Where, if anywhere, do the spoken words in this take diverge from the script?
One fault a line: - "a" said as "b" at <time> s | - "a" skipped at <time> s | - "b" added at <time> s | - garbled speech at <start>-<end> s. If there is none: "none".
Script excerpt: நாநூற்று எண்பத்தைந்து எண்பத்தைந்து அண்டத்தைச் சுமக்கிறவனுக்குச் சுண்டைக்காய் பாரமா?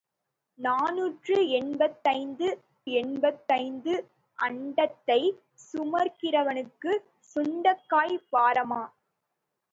none